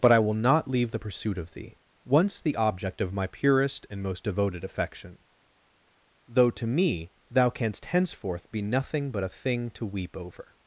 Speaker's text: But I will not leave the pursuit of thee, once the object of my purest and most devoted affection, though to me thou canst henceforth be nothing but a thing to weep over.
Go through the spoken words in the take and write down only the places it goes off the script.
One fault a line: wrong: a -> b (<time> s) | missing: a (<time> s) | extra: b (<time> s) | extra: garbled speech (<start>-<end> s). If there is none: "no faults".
no faults